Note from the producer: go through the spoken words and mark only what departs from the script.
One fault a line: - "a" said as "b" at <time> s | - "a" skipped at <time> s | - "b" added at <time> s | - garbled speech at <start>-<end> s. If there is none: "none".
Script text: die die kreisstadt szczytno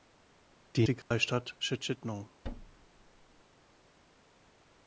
none